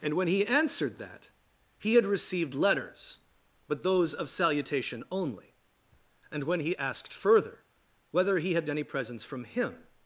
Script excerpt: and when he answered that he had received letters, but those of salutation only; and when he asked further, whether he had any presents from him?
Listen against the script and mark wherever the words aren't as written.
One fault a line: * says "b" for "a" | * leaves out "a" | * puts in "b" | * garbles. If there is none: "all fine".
all fine